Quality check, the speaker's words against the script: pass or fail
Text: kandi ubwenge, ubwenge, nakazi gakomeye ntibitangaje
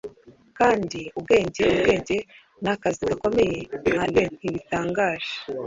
fail